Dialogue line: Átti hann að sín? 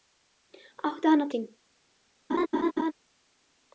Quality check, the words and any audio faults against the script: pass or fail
fail